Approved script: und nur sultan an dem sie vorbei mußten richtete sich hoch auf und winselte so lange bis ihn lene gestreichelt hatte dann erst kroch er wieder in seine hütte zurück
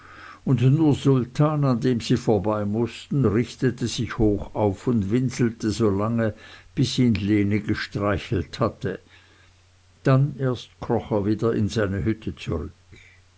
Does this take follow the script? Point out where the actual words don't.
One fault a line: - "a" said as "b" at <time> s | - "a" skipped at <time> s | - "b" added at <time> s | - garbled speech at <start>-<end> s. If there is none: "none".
none